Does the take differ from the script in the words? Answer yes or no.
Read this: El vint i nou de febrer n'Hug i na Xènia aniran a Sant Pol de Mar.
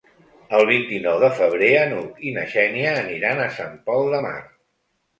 no